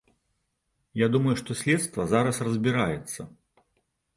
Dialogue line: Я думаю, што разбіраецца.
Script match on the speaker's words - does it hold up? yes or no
no